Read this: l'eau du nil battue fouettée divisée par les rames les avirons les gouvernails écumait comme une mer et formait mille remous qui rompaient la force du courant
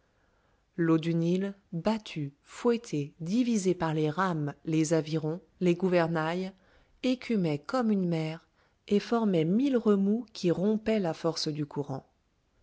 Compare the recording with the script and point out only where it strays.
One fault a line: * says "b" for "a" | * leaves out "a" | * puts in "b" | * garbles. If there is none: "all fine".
all fine